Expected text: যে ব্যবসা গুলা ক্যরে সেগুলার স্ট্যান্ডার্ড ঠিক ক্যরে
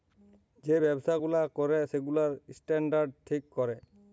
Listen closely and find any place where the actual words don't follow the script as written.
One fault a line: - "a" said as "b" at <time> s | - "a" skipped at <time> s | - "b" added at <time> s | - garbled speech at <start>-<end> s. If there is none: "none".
none